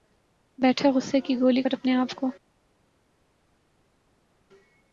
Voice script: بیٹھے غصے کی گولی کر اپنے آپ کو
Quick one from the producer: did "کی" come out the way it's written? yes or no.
yes